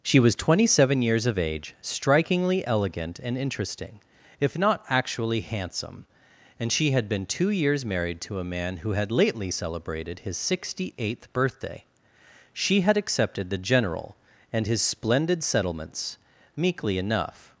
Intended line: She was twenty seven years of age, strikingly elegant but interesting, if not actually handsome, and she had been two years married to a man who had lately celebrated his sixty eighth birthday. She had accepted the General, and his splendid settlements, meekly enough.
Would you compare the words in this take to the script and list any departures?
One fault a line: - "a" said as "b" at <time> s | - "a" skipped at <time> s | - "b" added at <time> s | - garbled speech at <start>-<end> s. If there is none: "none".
- "but" said as "and" at 3.2 s